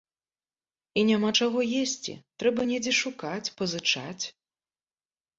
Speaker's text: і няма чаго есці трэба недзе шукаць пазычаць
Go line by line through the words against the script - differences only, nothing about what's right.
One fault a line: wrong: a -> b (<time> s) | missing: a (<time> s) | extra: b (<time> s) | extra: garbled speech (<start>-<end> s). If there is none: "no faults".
no faults